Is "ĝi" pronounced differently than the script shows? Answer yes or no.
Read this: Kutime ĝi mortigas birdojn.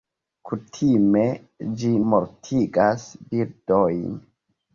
no